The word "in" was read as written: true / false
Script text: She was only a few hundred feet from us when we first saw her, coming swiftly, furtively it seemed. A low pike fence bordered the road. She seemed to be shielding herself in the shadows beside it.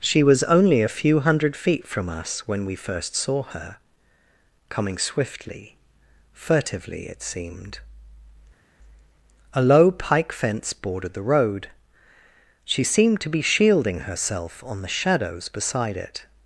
false